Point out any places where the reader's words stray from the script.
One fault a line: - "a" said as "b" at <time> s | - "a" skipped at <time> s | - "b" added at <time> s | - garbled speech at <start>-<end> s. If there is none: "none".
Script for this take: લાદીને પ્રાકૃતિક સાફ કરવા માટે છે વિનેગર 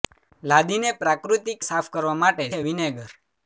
none